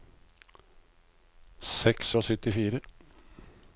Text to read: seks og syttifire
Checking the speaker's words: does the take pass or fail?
pass